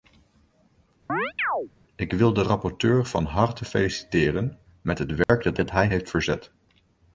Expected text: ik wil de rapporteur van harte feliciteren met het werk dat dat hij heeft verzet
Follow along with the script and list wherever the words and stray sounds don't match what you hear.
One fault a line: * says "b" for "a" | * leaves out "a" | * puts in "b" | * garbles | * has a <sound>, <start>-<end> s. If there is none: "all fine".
* has a chirp, 1.1-1.7 s
* has a dropout, 5.2-5.3 s